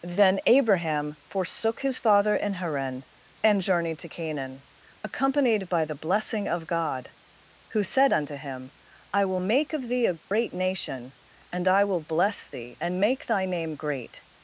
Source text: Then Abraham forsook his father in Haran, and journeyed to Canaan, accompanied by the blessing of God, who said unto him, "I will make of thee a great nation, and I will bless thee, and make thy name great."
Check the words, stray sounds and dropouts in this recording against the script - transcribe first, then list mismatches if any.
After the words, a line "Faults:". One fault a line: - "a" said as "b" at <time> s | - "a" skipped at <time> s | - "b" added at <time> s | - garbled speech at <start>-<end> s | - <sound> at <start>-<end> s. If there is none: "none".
Then Abraham forsook his father in Haran, and journeyed to Canaan, accompanied by the blessing of God, who said unto him, "I will make of thee a great nation, and I will bless thee, and make thy name great."
Faults:
- dropout at 10.2-10.3 s